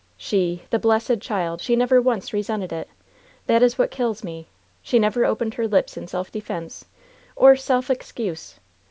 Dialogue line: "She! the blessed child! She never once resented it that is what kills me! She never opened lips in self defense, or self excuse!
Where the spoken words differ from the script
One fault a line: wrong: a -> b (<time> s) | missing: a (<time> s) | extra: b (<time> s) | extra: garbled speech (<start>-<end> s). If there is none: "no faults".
extra: her (5.6 s)